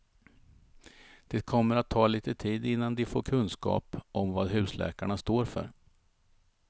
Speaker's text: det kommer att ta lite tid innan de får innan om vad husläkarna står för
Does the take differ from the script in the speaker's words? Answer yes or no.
yes